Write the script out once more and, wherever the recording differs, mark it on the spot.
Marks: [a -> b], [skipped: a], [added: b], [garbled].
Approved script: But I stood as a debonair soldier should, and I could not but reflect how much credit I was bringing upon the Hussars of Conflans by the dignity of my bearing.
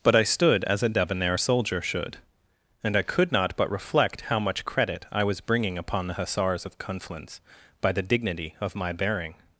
But I stood as a debonair soldier should, and I could not but reflect how much credit I was bringing upon the Hussars of Conflans by the dignity of my bearing.